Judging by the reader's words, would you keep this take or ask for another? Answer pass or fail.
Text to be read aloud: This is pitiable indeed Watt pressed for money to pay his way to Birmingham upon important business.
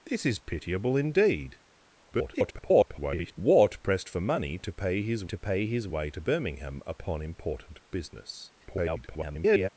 fail